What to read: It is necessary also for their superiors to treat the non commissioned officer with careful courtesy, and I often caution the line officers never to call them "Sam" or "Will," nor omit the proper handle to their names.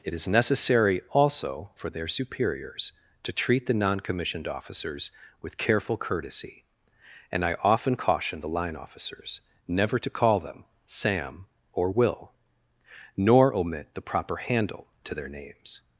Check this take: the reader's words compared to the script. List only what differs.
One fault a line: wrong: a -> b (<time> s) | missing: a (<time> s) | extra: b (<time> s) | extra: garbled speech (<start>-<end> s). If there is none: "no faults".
wrong: officer -> officers (4.5 s)